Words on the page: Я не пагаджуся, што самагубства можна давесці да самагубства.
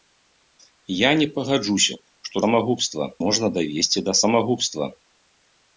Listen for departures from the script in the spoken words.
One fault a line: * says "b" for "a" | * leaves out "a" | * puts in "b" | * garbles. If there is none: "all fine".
all fine